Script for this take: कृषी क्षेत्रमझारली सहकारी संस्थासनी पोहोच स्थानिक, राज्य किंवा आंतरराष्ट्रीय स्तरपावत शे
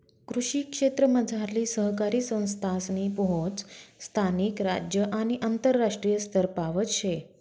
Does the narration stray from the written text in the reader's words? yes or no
yes